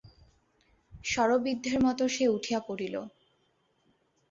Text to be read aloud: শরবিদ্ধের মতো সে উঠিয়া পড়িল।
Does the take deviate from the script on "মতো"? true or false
false